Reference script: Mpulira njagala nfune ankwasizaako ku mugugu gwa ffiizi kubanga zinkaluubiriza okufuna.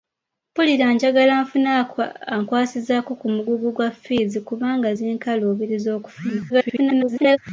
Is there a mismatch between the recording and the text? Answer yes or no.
yes